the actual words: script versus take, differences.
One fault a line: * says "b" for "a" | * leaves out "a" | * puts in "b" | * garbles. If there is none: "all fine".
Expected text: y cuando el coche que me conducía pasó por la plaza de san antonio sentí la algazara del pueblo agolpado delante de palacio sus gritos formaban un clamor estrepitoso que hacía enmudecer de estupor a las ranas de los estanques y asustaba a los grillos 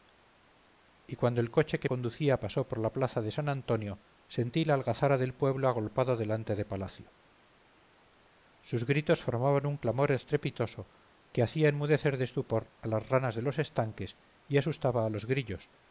* leaves out "me"